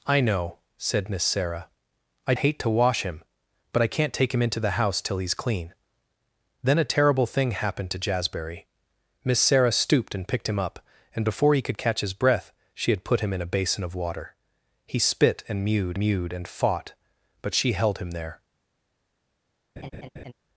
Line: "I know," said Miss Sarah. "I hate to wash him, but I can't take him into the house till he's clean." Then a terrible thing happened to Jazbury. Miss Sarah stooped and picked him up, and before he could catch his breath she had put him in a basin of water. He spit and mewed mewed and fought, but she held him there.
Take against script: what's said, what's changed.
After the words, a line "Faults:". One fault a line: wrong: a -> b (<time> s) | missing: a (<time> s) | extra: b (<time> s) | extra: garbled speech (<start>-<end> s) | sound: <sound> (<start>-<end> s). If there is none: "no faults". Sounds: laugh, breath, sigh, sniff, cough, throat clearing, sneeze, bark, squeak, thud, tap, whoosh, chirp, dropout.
"I know," said Miss Sarah. "I hate to wash him, but I can't take him into the house till he's clean." Then a terrible thing happened to Jazbury. Miss Sarah stooped and picked him up, and before he could catch his breath she had put him in a basin of water. He spit and mewed mewed and fought, but she held him there.
Faults:
sound: laugh (19.8-20.3 s)